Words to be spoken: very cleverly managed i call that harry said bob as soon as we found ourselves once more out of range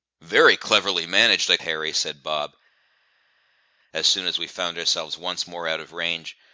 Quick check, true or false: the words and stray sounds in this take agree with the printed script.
false